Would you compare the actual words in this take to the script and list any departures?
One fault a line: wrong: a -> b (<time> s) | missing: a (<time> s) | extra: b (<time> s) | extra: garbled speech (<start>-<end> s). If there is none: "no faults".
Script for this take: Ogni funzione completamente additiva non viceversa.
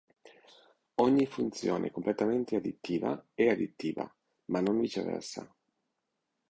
extra: è additiva ma (3.3 s)